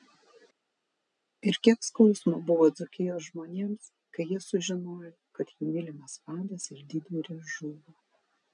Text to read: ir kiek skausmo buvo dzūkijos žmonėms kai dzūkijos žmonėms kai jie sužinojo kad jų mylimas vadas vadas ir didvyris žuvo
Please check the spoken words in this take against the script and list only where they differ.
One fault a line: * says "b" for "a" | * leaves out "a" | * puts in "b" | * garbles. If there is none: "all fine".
* leaves out "dzūkijos žmonėms kai"
* leaves out "vadas"